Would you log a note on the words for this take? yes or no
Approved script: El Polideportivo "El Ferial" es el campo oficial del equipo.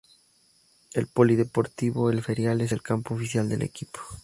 no